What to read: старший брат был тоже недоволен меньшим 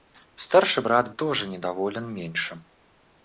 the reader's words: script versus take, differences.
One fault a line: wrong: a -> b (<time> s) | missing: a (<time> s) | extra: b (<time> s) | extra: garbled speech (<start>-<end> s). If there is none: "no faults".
missing: был (1.1 s)